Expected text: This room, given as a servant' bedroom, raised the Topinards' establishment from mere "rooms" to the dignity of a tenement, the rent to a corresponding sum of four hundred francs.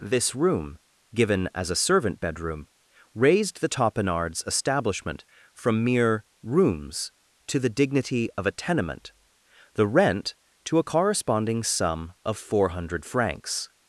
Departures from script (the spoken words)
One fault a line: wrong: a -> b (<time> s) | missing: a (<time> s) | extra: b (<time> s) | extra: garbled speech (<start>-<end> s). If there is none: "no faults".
no faults